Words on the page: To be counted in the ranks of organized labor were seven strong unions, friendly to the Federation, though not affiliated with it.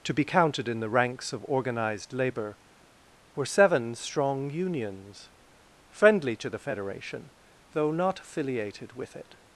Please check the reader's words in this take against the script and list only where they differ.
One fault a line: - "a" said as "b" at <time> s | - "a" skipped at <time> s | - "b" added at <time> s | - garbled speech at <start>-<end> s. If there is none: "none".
none